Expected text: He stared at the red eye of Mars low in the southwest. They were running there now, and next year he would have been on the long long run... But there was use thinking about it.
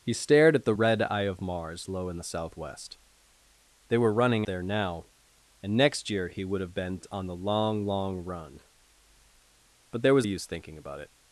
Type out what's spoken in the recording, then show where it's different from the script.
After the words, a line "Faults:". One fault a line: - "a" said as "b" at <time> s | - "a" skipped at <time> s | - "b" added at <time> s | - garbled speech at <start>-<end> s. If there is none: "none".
He stared at the red eye of Mars low in the southwest. They were running there now, and next year he would have been on the long long run... But there was use thinking about it.
Faults:
none